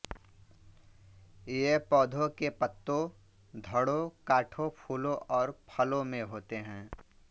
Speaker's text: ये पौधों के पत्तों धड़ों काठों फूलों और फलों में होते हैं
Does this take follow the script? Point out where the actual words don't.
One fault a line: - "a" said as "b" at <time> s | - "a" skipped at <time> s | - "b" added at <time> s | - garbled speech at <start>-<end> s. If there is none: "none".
none